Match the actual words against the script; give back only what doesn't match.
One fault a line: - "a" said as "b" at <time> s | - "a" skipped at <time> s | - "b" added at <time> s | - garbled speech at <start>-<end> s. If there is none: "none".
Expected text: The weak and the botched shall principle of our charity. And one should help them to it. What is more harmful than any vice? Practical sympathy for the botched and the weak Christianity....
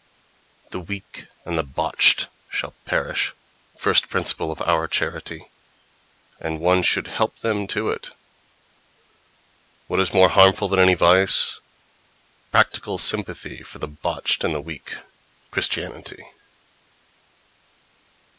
- "perish first" added at 2.9 s